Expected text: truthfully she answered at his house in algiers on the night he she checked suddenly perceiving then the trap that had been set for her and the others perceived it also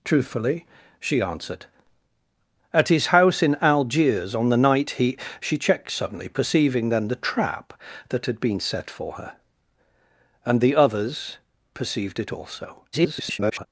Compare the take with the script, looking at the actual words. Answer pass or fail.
fail